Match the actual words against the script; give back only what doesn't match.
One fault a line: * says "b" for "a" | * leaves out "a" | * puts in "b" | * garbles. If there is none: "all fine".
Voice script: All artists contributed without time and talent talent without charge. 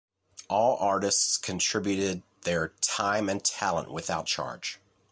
* says "their" for "without"
* leaves out "talent"